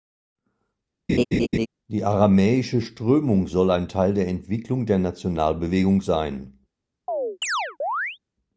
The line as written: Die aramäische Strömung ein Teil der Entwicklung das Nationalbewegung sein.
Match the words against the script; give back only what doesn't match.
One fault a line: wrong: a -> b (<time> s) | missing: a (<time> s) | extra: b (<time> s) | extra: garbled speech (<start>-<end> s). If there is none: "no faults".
extra: soll (3.5 s)
wrong: das -> der (4.9 s)